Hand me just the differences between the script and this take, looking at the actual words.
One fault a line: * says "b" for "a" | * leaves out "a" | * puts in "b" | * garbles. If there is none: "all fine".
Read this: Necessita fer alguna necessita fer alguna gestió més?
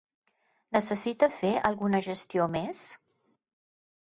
* leaves out "necessita fer alguna"